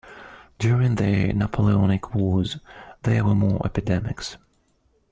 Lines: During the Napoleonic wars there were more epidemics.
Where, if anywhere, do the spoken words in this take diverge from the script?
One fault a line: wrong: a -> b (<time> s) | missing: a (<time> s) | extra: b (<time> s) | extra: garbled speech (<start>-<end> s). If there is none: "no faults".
no faults